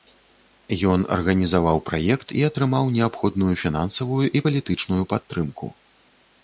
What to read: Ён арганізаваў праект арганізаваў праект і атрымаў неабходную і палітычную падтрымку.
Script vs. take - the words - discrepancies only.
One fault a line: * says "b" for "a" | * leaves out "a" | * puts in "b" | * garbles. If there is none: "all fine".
* leaves out "арганізаваў праект"
* puts in "фінансавую"